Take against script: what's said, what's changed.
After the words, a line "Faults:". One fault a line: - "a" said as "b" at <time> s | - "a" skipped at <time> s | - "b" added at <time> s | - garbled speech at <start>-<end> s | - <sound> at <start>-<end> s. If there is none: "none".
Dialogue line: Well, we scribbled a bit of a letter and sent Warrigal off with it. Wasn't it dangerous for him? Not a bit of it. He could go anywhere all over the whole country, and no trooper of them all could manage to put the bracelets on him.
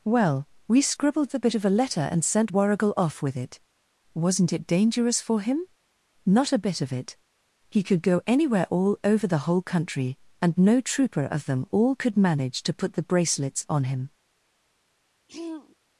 Well, we scribbled the bit of a letter and sent Warrigal off with it. Wasn't it dangerous for him? Not a bit of it. He could go anywhere all over the whole country, and no trooper of them all could manage to put the bracelets on him.
Faults:
- "a" said as "the" at 1.3 s
- throat clearing at 15.3-15.8 s